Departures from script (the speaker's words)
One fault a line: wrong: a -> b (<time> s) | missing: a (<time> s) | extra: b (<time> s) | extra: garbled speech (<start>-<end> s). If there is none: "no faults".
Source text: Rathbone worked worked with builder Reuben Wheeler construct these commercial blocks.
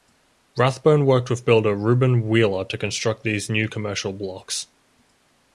missing: worked (1.3 s)
extra: to (2.6 s)
extra: new (3.5 s)